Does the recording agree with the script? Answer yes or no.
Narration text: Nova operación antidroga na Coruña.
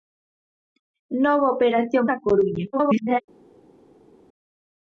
no